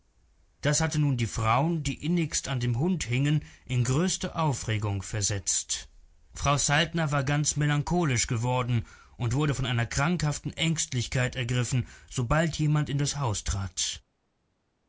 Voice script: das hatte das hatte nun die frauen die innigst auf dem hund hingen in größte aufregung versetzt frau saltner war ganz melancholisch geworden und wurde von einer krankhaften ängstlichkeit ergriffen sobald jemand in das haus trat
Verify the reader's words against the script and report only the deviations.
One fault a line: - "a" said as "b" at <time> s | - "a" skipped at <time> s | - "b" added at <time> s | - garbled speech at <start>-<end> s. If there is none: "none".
- "das hatte" skipped at 1.0 s
- "auf" said as "an" at 2.5 s